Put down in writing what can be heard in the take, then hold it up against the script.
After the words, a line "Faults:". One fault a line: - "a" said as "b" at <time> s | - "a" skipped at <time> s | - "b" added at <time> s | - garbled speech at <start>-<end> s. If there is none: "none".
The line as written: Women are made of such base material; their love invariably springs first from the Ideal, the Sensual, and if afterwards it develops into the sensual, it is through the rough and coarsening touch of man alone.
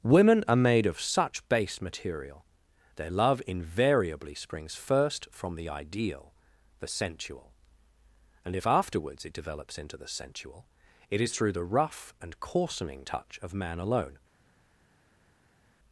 Women are made of such base material; their love invariably springs first from the Ideal, the Sensual, and if afterwards it develops into the sensual, it is through the rough and coarsening touch of man alone.
Faults:
none